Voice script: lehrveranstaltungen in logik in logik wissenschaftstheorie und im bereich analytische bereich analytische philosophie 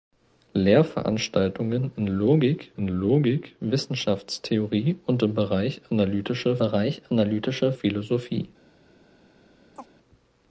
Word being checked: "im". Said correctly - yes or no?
yes